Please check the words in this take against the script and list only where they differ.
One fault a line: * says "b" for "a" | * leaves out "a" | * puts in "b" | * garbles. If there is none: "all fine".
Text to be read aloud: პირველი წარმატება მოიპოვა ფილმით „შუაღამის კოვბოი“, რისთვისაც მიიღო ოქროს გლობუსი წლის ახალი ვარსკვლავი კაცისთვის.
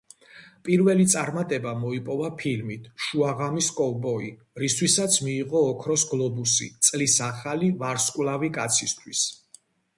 all fine